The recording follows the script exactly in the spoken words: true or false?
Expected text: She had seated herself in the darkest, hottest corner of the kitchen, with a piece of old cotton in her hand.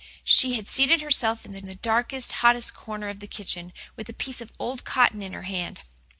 false